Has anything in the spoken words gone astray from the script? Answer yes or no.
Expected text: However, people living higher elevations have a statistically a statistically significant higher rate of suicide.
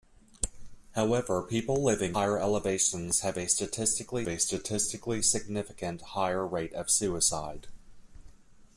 no